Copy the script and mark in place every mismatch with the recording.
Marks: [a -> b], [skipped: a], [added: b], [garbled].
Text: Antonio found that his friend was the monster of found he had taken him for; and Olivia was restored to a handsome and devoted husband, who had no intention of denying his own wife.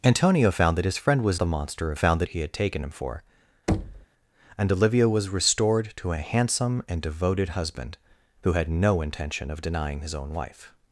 Antonio found that his friend was the monster of found he had taken him for; and Olivia was restored to a handsome and devoted husband, who had no intention of denying his own wife.